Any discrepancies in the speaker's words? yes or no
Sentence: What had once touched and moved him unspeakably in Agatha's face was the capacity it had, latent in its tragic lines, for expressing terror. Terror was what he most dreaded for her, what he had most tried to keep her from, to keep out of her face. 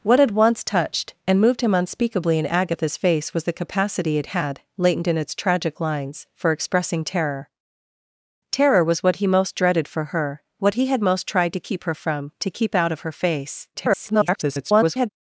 yes